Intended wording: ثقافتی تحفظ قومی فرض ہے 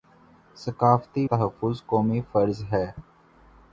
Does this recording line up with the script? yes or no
yes